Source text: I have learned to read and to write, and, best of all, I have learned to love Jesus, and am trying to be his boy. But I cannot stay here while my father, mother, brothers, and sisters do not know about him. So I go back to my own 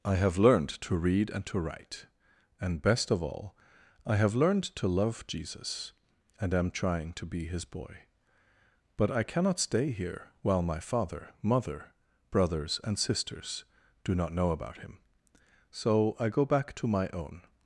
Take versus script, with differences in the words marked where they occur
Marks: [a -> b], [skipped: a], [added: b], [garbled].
I have learned to read and to write, and, best of all, I have learned to love Jesus, and am trying to be his boy. But I cannot stay here while my father, mother, brothers, and sisters do not know about him. So I go back to my own